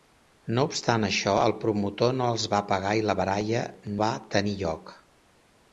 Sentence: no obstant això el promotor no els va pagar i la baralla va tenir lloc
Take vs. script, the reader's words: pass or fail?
pass